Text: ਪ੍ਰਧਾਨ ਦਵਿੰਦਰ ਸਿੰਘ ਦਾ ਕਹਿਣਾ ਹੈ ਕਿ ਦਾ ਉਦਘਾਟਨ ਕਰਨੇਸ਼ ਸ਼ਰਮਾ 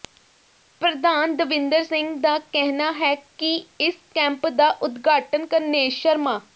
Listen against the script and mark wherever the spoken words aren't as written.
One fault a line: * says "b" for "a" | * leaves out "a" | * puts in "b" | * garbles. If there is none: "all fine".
* puts in "ਇਸ ਕੈਂਪ"